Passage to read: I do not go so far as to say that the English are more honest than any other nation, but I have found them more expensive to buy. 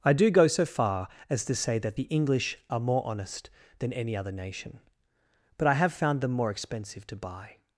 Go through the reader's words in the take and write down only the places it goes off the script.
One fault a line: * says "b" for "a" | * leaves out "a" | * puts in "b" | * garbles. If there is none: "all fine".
* leaves out "not"